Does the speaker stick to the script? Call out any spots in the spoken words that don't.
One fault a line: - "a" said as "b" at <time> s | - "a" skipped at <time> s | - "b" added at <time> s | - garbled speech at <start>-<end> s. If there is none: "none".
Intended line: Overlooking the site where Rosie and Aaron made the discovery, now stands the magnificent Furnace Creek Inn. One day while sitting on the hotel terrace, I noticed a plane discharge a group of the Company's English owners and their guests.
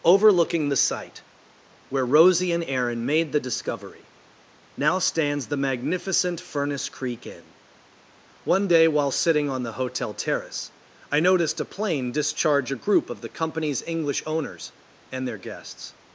none